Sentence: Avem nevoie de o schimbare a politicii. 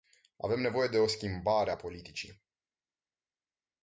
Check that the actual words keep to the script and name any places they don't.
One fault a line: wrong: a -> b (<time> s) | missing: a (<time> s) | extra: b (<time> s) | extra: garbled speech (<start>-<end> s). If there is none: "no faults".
no faults